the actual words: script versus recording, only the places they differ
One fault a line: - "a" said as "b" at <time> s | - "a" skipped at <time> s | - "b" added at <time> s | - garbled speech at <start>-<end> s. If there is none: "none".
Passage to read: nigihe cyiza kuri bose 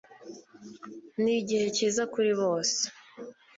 none